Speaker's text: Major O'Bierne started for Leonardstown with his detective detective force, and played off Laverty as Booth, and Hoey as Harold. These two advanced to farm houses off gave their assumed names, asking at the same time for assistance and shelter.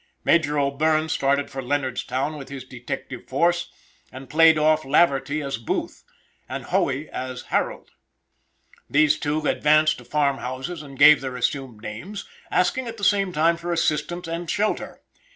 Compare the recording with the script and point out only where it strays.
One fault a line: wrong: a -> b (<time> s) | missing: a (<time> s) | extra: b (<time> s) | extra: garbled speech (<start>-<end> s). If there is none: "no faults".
missing: detective (3.3 s)
wrong: off -> and (10.8 s)